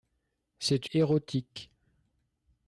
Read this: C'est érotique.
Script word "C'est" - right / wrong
right